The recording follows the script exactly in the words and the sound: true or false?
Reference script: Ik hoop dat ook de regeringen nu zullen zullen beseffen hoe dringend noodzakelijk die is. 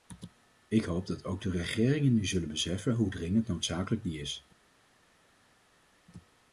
false